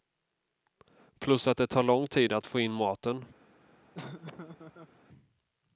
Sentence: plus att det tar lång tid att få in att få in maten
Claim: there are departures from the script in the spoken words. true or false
true